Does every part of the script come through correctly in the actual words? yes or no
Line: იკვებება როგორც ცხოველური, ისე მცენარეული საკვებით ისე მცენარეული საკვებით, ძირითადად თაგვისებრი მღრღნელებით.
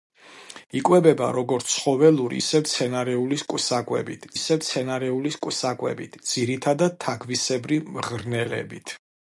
yes